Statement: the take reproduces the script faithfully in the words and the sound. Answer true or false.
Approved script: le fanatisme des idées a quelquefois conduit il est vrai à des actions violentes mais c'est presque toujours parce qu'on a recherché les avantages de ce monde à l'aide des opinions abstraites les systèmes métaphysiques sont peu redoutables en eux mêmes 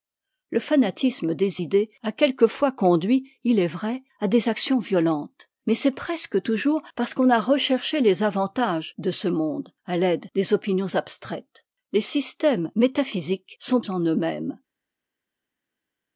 false